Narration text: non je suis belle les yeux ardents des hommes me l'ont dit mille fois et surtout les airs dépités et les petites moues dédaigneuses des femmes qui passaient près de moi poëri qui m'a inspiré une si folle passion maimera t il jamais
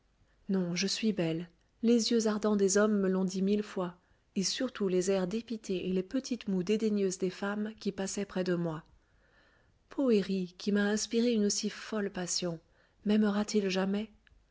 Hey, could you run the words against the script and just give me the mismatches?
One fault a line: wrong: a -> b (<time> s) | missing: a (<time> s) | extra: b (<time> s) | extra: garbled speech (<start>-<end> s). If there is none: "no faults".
no faults